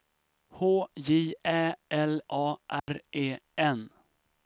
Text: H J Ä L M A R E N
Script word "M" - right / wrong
wrong